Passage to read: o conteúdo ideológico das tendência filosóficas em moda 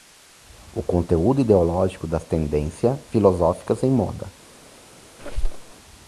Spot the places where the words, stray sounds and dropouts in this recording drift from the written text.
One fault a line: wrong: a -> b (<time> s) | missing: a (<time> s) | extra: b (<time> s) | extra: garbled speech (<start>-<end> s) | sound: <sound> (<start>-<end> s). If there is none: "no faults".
sound: squeak (5.2-5.7 s)